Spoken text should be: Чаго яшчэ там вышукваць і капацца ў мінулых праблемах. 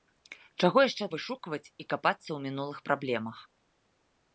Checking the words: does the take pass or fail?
fail